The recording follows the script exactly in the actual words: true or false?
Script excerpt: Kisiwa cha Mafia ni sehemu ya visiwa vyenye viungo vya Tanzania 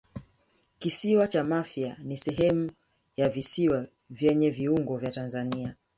true